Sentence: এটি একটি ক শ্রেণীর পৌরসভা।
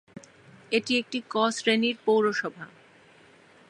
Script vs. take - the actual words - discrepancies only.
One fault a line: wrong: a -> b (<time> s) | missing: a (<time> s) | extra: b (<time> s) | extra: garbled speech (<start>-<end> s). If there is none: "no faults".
no faults